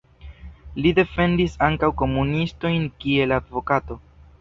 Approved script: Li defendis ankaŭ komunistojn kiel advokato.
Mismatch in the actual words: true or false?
false